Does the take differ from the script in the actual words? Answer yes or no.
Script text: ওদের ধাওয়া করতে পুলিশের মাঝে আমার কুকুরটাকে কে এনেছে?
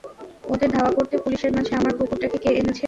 no